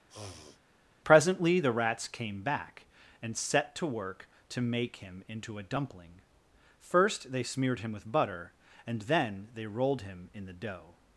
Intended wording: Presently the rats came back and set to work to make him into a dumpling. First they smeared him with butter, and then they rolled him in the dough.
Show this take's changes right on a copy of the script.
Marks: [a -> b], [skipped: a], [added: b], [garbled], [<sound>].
[sniff] Presently the rats came back and set to work to make him into a dumpling. First they smeared him with butter, and then they rolled him in the dough.